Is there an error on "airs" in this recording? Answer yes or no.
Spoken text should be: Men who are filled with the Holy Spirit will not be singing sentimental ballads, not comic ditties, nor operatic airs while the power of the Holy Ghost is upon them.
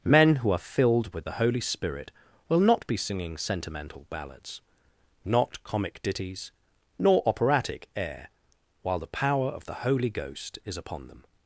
yes